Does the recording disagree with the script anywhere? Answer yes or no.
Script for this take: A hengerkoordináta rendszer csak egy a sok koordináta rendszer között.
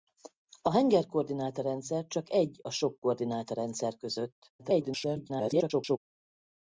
yes